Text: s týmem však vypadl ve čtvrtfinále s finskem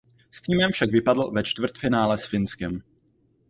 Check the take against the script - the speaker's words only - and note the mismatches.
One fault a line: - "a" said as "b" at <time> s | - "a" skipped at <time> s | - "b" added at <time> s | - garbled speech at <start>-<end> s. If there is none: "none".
none